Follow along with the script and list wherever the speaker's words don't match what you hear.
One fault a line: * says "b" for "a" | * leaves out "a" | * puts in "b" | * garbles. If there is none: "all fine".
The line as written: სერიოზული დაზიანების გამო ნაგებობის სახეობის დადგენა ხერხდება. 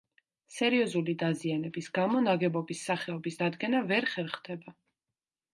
* puts in "ვერ"